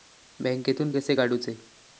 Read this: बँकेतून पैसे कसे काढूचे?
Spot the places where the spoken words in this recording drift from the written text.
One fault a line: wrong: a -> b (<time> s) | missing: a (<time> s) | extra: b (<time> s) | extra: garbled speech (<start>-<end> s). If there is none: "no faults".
missing: पैसे (0.9 s)